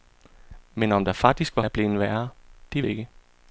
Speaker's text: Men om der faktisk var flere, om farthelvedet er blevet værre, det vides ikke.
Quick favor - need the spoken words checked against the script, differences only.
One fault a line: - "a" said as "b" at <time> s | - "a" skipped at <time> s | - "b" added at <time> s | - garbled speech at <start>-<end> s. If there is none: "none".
- "flere om farthelvedet" skipped at 1.6 s
- "vides" skipped at 2.9 s